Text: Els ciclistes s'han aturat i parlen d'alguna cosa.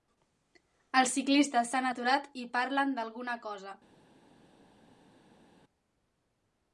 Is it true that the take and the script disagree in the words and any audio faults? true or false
false